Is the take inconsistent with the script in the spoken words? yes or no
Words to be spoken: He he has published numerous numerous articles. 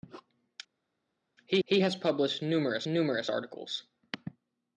no